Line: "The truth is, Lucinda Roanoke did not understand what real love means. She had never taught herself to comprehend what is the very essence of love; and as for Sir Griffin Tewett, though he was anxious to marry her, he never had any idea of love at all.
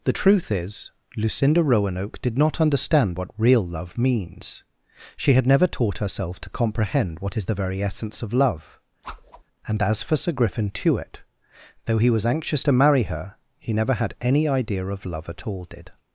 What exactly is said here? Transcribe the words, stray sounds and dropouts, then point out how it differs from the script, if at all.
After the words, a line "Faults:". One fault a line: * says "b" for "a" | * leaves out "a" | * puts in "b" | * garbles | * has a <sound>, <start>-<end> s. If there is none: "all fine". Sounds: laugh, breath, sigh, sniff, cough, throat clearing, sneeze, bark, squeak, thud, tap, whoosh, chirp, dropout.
"The truth is, Lucinda Roanoke did not understand what real love means. She had never taught herself to comprehend what is the very essence of love; and as for Sir Griffin Tewett, though he was anxious to marry her, he never had any idea of love at all. Did
Faults:
* has a whoosh, 9.0-9.4 s
* puts in "Did"